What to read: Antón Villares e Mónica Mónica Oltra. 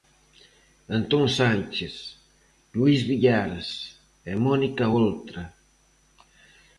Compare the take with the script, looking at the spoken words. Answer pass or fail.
fail